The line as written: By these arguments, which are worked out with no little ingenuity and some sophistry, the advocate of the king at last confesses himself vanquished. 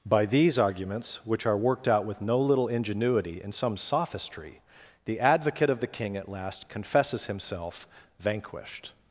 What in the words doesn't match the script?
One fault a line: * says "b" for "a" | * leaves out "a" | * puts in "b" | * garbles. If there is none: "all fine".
all fine